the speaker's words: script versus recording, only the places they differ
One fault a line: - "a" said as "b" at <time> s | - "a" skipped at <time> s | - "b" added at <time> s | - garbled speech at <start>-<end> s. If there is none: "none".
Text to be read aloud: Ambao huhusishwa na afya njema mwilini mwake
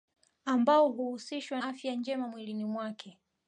- "na" skipped at 1.6 s